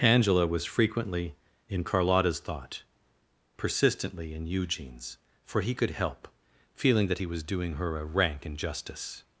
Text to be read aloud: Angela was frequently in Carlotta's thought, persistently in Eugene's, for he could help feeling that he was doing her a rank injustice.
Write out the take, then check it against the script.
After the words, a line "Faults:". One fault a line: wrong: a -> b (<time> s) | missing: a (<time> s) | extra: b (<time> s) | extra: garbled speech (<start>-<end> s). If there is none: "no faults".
Angela was frequently in Carlotta's thought, persistently in Eugene's, for he could help feeling that he was doing her a rank injustice.
Faults:
no faults